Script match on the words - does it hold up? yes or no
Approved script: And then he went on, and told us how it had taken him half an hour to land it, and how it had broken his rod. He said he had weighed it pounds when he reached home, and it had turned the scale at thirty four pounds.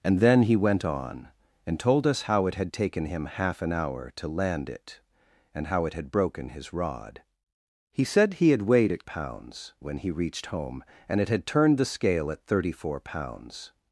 yes